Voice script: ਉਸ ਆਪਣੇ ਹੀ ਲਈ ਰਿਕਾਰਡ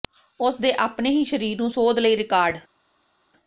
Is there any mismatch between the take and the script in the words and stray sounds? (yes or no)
yes